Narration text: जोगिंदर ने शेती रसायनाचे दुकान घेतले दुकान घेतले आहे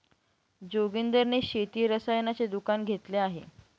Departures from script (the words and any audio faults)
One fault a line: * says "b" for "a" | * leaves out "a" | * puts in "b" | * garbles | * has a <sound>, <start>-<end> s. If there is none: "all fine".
* leaves out "दुकान घेतले"